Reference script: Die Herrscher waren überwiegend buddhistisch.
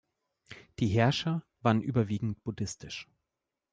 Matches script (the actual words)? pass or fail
pass